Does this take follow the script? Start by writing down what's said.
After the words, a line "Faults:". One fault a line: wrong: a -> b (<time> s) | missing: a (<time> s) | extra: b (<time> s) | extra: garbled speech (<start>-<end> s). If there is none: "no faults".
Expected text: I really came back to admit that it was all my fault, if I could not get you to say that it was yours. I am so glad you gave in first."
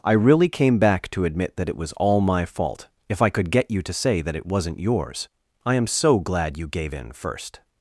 I really came back to admit that it was all my fault, if I could get you to say that it wasn't yours. I am so glad you gave in first."
Faults:
missing: not (3.5 s)
wrong: was -> wasn't (4.5 s)